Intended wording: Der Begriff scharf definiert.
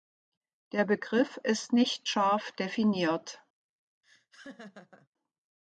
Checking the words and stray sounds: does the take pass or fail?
fail